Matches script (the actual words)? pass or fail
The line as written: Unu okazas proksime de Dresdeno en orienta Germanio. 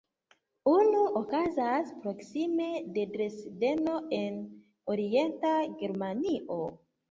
pass